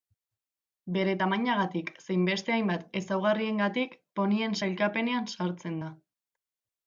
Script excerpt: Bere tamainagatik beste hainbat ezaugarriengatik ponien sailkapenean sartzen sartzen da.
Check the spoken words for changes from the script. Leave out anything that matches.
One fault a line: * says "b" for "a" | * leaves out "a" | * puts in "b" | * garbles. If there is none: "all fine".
* puts in "zein"
* leaves out "sartzen"